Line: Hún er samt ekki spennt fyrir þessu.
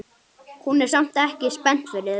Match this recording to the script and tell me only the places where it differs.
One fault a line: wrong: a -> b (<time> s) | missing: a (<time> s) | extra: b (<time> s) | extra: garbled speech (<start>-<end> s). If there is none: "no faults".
no faults